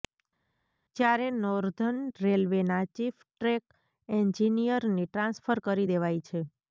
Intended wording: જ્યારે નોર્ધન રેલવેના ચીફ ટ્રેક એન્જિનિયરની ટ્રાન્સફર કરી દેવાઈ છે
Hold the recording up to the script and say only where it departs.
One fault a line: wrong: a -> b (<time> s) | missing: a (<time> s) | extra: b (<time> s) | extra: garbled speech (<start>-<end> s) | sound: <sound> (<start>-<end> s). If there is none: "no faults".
no faults